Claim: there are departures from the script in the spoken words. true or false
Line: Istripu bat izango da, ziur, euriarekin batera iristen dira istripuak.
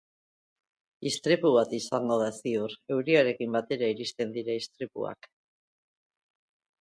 false